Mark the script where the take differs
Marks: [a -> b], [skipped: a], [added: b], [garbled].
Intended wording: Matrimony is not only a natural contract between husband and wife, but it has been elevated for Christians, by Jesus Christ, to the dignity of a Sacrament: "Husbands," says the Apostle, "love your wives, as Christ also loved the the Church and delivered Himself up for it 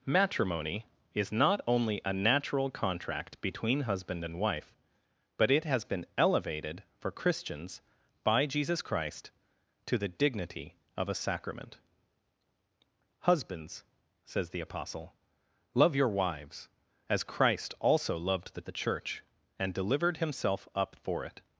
Matrimony is not only a natural contract between husband and wife, but it has been elevated for Christians, by Jesus Christ, to the dignity of a Sacrament: "Husbands," says the Apostle, "love your wives, as Christ also loved the the Church and delivered Himself up for it